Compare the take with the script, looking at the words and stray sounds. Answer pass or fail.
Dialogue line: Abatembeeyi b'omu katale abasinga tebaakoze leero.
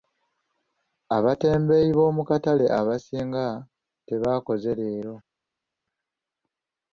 pass